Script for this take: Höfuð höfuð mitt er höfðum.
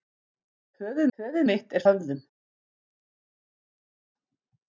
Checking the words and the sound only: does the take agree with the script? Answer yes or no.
yes